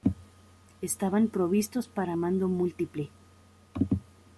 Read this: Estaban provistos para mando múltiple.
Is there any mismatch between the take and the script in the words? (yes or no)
no